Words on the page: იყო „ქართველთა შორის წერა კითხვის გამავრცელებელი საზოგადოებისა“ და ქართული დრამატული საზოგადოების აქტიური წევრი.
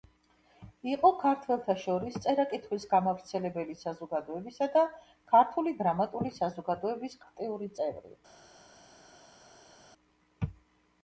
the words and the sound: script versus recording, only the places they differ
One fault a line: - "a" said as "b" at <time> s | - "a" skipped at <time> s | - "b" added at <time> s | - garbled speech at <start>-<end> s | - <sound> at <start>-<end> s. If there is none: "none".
none